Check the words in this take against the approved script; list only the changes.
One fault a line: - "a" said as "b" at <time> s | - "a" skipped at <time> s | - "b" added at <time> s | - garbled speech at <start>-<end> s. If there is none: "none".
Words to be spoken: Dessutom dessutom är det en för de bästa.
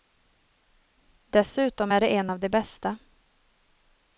- "dessutom" skipped at 1.9 s
- "för" said as "av" at 2.3 s